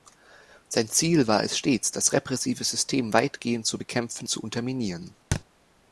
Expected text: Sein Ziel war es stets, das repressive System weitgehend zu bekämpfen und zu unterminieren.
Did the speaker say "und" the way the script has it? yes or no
no